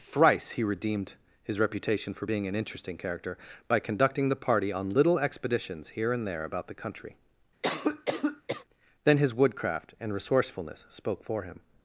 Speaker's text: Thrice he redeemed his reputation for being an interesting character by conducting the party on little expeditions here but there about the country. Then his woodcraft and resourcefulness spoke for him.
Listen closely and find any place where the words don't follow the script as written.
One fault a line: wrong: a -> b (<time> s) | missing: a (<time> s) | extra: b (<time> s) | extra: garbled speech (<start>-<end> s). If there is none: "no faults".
wrong: but -> and (6.1 s)